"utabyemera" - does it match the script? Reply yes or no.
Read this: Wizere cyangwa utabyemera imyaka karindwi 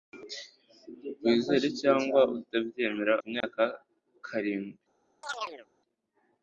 yes